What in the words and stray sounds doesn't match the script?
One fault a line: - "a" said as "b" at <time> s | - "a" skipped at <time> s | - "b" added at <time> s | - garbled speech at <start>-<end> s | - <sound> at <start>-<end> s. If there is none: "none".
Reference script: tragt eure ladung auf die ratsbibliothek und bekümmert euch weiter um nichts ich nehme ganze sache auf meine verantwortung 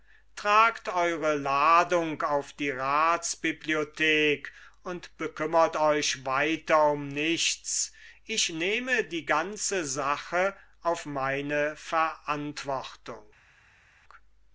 - "die" added at 9.0 s